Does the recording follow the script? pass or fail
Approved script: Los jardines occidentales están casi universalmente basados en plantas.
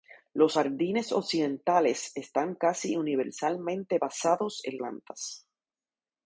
pass